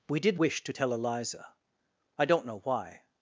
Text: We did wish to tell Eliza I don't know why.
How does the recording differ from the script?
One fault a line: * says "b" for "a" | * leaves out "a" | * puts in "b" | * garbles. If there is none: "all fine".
all fine